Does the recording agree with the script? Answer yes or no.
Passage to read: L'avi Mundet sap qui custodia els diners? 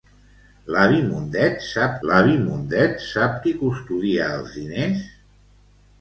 no